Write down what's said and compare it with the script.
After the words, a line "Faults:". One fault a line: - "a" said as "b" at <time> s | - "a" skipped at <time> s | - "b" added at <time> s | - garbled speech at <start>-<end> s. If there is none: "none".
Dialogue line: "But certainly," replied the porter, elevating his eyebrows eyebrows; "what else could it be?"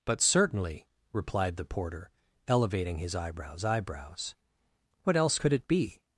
"But certainly," replied the porter, elevating his eyebrows eyebrows; "what else could it be?"
Faults:
none